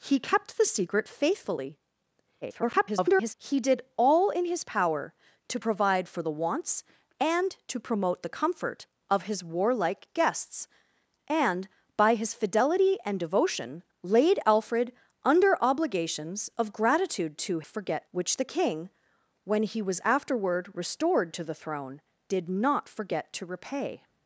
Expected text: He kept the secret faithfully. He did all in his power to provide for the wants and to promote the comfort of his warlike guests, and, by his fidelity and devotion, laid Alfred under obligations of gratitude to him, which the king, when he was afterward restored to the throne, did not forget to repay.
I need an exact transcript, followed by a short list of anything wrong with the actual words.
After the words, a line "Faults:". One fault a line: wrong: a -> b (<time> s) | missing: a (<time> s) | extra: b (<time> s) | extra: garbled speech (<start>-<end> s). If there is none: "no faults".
He kept the secret faithfully. [garbled] He did all in his power to provide for the wants and to promote the comfort of his warlike guests, and, by his fidelity and devotion, laid Alfred under obligations of gratitude to forget, which the king, when he was afterward restored to the throne, did not forget to repay.
Faults:
extra: garbled speech (2.4-3.3 s)
wrong: him -> forget (17.6 s)